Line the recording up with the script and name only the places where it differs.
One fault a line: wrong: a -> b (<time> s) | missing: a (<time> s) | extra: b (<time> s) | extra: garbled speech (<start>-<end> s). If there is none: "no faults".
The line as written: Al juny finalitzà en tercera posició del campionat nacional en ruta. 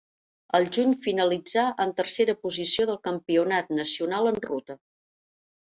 no faults